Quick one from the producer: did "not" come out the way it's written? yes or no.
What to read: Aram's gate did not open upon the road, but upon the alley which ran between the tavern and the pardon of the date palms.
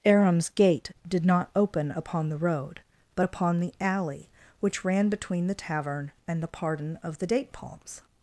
yes